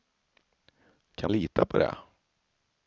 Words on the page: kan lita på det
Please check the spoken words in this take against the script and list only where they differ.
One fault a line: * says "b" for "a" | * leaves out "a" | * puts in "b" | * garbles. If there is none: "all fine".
all fine